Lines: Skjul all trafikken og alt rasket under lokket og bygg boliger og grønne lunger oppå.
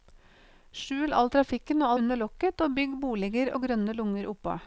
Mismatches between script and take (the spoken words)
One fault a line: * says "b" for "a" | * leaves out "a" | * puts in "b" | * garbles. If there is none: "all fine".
* leaves out "alt rasket"